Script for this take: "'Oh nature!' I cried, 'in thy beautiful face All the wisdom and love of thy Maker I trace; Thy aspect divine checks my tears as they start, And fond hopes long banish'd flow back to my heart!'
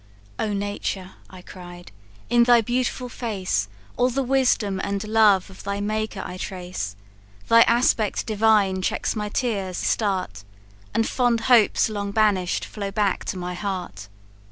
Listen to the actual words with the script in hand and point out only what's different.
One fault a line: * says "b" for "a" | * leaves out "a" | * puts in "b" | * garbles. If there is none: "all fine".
* leaves out "as they"